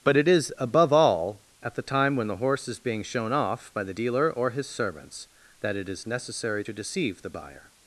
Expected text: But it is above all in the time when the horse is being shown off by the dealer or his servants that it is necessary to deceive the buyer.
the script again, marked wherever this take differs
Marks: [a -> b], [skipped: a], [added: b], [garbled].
But it is above all [in -> at] the time when the horse is being shown off by the dealer or his servants that it is necessary to deceive the buyer.